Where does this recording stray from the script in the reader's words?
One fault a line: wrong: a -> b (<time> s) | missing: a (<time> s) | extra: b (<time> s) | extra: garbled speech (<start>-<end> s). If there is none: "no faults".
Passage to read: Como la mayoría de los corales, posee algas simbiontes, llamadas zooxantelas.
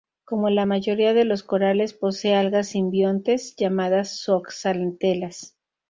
no faults